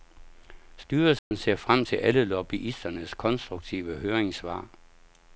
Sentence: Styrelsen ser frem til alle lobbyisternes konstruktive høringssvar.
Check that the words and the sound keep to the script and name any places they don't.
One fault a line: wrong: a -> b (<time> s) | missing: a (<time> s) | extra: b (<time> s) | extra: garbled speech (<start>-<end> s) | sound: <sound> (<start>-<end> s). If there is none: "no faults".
sound: dropout (1.2-1.3 s)